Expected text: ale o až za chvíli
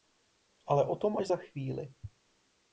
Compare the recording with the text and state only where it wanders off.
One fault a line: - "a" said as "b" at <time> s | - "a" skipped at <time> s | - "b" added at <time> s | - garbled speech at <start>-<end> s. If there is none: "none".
- "tom" added at 0.9 s